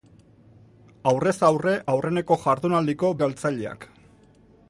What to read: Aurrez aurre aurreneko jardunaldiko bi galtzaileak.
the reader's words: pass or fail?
fail